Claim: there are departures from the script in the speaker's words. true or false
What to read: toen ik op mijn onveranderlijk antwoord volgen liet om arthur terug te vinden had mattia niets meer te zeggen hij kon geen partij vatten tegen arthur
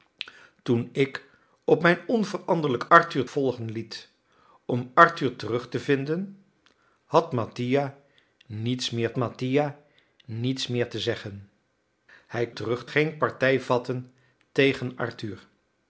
true